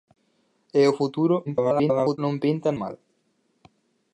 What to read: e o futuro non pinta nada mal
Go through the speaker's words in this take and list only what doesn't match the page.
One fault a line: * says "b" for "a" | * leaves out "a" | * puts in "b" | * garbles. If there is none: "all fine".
* garbles
* leaves out "nada"